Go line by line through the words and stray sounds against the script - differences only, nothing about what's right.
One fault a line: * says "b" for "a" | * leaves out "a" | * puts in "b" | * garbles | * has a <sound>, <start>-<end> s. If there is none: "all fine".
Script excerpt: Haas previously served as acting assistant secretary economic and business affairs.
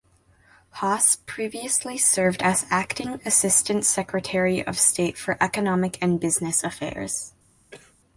* puts in "of state for"
* has a cough, 7.7-7.9 s